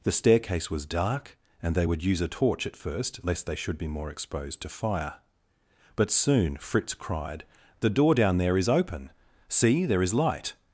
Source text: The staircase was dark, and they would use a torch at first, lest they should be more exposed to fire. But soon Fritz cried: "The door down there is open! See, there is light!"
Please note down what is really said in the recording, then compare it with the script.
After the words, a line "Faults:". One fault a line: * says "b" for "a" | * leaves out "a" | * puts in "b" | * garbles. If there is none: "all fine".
The staircase was dark, and they would use a torch at first, lest they should be more exposed to fire. But soon Fritz cried: "The door down there is open! See, there is light!"
Faults:
all fine